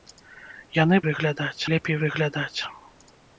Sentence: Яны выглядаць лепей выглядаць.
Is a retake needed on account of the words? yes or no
no